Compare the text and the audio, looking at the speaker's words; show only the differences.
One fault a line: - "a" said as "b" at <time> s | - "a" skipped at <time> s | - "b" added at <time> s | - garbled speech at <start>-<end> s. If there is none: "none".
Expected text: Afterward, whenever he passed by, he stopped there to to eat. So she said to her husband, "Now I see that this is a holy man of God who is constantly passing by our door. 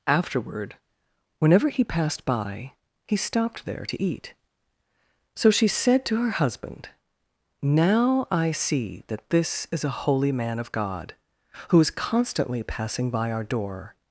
- "to" skipped at 4.0 s